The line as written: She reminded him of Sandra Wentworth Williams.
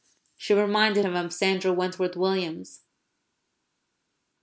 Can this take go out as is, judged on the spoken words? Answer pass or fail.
pass